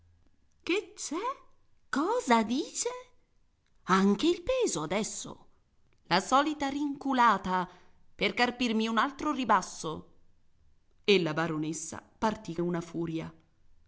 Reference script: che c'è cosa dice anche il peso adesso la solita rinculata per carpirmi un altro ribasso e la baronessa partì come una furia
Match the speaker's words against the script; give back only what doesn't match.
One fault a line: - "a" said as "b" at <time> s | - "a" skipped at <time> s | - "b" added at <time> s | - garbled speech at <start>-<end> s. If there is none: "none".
- "come" skipped at 12.6 s